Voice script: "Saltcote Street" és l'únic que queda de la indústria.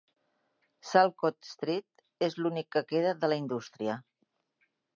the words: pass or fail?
pass